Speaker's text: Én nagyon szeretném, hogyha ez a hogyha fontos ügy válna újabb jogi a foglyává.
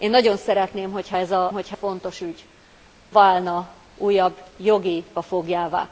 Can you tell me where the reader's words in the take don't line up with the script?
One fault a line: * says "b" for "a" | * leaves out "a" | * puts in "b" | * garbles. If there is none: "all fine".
all fine